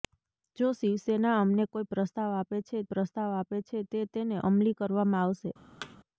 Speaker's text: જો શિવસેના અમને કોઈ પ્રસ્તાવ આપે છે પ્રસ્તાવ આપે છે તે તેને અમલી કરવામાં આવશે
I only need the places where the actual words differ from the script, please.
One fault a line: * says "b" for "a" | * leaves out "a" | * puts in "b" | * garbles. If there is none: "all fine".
all fine